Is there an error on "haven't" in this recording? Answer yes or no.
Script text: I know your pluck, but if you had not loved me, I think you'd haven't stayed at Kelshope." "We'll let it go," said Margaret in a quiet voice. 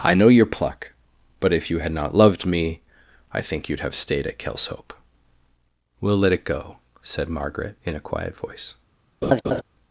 yes